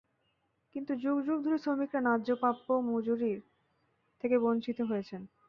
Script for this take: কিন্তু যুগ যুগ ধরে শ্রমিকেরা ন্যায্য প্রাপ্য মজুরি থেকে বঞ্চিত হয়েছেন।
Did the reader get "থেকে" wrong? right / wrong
right